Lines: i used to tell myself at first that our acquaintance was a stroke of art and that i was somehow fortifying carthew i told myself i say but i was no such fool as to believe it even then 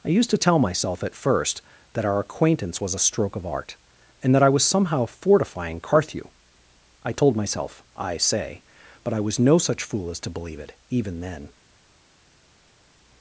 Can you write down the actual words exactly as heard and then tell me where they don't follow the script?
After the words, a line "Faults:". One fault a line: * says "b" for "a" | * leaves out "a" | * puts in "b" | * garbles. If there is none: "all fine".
i used to tell myself at first that our acquaintance was a stroke of art and that i was somehow fortifying carthew i told myself i say but i was no such fool as to believe it even then
Faults:
all fine